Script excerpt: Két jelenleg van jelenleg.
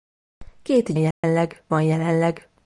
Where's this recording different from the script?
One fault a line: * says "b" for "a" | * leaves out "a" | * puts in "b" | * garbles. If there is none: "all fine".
all fine